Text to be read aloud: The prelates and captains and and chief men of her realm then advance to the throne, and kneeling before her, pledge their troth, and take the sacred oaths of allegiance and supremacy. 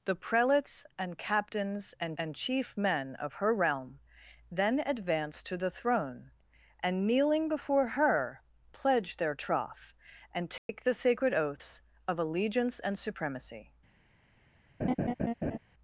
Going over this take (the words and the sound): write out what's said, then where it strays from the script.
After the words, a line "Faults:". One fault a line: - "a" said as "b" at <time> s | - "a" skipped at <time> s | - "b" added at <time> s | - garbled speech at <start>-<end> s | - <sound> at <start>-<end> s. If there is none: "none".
The prelates and captains and and chief men of her realm then advance to the throne, and kneeling before her, pledge their troth, and take the sacred oaths of allegiance and supremacy.
Faults:
- dropout at 10.6-10.7 s
- laugh at 14.8-15.6 s